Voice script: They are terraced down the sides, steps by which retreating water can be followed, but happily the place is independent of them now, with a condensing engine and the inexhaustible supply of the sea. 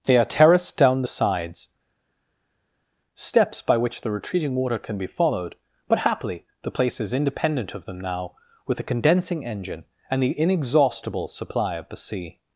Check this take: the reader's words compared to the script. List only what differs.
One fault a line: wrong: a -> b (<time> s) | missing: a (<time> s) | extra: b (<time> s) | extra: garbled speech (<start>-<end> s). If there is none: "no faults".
extra: the (4.0 s)